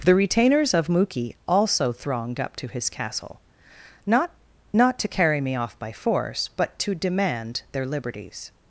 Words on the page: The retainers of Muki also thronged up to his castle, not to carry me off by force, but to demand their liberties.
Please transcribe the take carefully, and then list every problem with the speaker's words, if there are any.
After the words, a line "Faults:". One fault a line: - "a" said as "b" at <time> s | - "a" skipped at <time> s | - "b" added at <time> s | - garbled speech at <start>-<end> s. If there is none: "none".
The retainers of Muki also thronged up to his castle, not not to carry me off by force, but to demand their liberties.
Faults:
- "not" added at 4.7 s